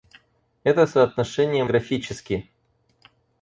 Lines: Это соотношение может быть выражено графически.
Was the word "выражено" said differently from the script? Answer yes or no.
yes